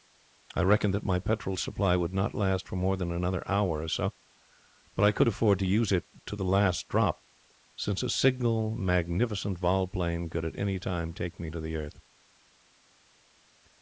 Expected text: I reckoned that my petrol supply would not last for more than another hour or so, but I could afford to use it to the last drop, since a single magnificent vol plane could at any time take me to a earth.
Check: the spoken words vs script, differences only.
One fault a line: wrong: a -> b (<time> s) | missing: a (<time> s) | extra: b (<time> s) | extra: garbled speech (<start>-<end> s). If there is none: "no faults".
wrong: a -> the (11.6 s)